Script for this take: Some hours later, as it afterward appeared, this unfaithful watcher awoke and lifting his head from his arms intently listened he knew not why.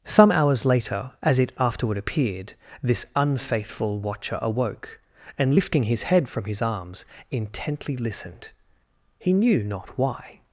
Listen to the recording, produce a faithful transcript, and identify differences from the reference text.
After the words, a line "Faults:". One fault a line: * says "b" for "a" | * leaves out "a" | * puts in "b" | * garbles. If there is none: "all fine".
Some hours later, as it afterward appeared, this unfaithful watcher awoke and lifting his head from his arms intently listened he knew not why.
Faults:
all fine